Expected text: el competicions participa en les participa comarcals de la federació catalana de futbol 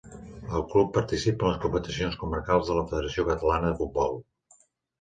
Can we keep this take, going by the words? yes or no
no